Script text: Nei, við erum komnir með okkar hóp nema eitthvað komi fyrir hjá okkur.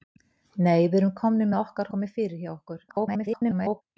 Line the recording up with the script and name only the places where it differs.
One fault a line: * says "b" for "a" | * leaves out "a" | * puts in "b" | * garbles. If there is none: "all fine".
* leaves out "hóp nema eitthvað"
* garbles